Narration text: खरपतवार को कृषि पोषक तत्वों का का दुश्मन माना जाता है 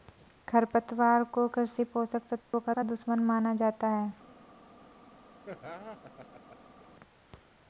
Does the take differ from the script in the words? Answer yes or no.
no